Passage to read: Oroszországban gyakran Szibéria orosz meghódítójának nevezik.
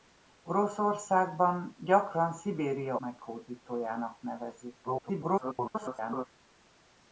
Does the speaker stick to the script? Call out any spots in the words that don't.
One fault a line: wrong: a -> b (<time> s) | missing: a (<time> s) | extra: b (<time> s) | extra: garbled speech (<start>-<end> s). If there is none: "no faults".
missing: orosz (3.0 s)
extra: garbled speech (4.8-6.3 s)